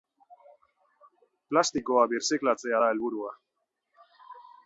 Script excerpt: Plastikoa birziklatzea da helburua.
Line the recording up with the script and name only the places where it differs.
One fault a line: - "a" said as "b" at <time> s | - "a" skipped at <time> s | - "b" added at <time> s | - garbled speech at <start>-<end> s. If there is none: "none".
none